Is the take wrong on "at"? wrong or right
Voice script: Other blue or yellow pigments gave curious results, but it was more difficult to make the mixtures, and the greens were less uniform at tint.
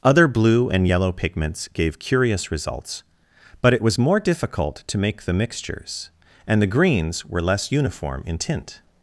wrong